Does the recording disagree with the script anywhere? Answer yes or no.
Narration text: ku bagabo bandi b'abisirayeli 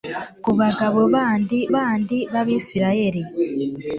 yes